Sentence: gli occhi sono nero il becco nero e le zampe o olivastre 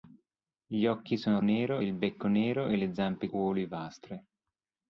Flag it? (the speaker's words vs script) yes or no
no